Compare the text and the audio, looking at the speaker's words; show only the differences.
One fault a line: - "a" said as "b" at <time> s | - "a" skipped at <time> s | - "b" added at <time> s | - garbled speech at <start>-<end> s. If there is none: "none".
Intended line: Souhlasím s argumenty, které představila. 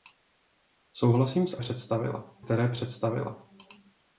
- "argumenty" said as "představila" at 1.6 s